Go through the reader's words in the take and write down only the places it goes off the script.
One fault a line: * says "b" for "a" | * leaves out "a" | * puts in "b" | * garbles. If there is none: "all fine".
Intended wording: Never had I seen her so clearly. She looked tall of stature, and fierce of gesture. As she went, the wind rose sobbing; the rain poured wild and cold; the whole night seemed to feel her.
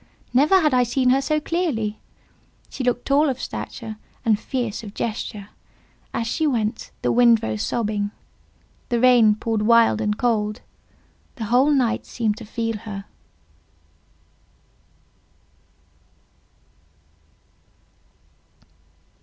all fine